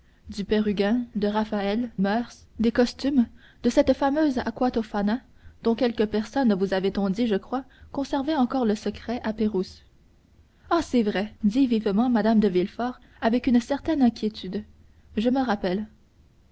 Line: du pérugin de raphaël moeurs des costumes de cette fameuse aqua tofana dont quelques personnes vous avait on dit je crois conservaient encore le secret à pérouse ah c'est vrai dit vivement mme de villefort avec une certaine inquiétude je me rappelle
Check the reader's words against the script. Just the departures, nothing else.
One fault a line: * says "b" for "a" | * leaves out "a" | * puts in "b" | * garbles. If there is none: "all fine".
all fine